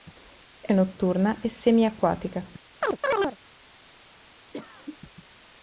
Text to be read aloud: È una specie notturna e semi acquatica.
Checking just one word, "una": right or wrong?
wrong